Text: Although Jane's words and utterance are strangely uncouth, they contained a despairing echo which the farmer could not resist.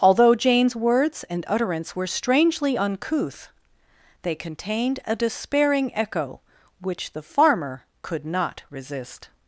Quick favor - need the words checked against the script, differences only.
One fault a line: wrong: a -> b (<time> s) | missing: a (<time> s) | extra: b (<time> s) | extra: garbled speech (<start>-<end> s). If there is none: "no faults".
wrong: are -> were (1.9 s)